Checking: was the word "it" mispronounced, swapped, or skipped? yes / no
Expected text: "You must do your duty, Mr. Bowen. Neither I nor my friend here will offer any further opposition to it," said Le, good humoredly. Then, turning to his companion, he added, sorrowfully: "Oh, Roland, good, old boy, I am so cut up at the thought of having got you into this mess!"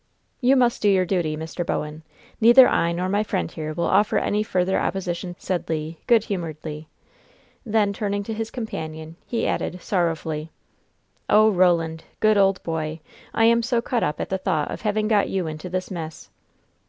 yes